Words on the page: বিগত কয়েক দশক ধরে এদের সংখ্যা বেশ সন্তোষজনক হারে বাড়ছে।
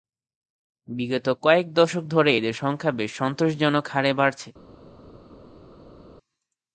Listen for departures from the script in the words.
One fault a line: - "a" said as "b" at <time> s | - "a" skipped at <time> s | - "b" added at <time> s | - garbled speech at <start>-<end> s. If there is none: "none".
none